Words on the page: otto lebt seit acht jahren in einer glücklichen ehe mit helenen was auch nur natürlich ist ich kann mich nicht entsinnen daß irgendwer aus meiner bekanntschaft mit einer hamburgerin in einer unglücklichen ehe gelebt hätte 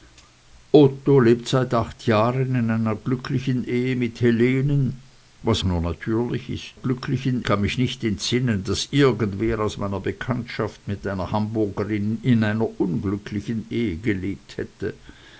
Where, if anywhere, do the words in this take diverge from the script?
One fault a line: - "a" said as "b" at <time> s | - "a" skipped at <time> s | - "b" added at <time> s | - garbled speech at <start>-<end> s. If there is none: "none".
- "auch" skipped at 5.6 s
- "ich" said as "glücklichen" at 6.7 s